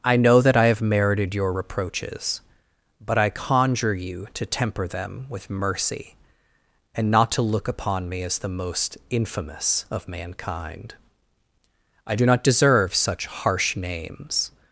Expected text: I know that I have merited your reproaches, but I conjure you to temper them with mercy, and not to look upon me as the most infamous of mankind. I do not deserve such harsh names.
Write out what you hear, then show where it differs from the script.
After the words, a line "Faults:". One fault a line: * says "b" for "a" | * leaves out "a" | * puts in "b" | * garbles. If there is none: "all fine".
I know that I have merited your reproaches, but I conjure you to temper them with mercy, and not to look upon me as the most infamous of mankind. I do not deserve such harsh names.
Faults:
all fine